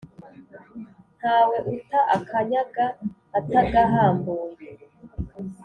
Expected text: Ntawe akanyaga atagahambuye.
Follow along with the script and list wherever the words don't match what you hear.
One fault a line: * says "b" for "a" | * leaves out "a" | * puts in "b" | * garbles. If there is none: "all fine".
* puts in "uta"